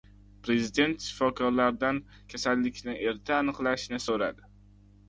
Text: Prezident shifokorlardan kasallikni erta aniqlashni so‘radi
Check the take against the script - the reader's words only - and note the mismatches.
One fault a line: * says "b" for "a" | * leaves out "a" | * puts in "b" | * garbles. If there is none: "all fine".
all fine